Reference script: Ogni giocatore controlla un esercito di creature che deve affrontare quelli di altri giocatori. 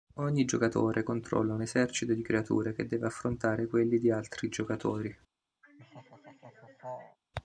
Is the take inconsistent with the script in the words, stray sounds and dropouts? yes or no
yes